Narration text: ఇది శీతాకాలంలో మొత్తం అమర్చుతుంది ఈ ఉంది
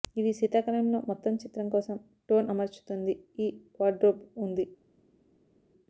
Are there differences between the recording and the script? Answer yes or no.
yes